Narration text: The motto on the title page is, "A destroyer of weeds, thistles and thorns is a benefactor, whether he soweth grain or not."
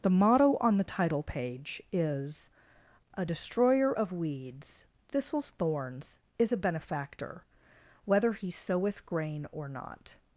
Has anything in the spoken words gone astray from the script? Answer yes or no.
yes